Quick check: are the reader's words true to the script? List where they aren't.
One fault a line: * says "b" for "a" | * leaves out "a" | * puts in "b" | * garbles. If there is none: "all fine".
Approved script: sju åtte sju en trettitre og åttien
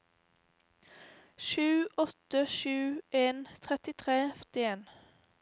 all fine